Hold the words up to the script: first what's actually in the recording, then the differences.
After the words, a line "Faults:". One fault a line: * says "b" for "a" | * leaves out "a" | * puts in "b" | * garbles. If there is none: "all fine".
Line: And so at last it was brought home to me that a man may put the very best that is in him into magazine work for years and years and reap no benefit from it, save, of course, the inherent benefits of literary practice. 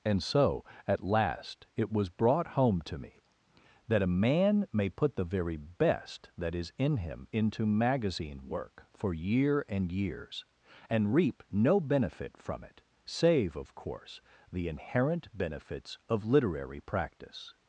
And so at last it was brought home to me that a man may put the very best that is in him into magazine work for year and years and reap no benefit from it, save, of course, the inherent benefits of literary practice.
Faults:
* says "year" for "years"